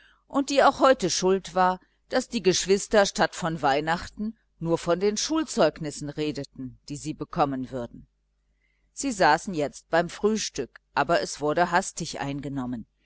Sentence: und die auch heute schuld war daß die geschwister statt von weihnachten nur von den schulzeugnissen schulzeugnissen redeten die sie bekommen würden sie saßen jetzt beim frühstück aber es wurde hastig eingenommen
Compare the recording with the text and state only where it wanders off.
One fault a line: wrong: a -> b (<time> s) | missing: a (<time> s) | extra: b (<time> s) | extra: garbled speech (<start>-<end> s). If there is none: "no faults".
missing: schulzeugnissen (6.1 s)